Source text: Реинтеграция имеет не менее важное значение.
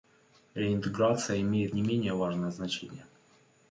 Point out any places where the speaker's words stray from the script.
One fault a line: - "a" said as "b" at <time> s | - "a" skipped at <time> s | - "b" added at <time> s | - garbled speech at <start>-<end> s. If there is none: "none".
none